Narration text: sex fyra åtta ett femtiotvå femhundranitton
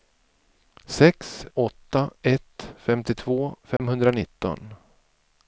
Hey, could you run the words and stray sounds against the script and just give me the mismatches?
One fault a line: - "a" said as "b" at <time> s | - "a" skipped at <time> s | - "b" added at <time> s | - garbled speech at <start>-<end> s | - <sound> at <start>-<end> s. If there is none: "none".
- "fyra" skipped at 1.4 s
- dropout at 3.8-3.8 s